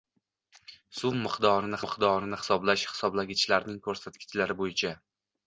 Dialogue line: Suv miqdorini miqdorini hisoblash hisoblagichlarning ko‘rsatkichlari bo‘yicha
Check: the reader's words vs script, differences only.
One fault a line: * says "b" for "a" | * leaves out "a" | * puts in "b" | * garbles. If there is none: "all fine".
all fine